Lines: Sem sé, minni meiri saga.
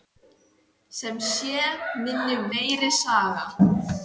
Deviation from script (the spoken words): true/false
false